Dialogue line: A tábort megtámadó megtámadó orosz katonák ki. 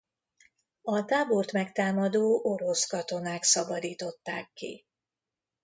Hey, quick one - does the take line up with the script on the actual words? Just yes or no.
no